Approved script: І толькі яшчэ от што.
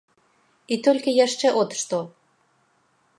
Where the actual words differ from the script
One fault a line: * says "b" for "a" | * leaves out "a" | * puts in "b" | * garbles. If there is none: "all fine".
all fine